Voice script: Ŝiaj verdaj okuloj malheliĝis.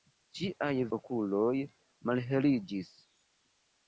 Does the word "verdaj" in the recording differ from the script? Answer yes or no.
yes